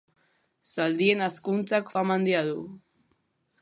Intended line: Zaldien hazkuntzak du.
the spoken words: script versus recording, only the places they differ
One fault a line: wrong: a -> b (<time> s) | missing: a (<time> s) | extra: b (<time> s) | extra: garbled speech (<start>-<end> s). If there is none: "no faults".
extra: fama handia (1.9 s)